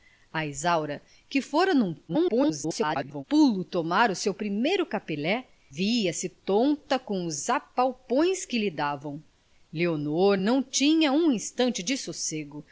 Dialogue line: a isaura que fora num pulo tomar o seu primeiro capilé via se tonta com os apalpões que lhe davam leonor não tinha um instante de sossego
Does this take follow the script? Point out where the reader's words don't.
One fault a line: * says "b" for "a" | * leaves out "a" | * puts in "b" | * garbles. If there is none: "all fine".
* garbles